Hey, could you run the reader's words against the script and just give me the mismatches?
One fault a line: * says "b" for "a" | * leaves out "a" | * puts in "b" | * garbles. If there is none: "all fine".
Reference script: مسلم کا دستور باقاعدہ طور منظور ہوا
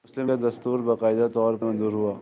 all fine